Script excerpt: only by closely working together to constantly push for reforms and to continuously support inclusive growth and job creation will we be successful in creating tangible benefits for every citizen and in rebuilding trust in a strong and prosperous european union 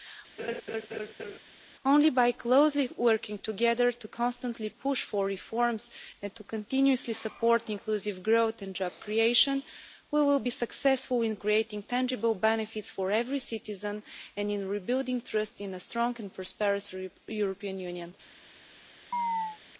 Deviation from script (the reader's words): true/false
false